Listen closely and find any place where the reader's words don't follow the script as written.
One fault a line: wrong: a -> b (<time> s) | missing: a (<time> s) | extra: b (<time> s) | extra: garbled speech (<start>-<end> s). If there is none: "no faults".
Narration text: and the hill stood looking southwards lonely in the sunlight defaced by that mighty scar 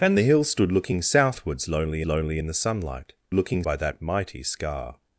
extra: lonely (2.1 s)
wrong: defaced -> looking (3.3 s)